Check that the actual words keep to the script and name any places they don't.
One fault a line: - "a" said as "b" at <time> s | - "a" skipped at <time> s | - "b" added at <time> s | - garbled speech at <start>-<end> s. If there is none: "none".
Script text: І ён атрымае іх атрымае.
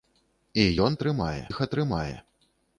none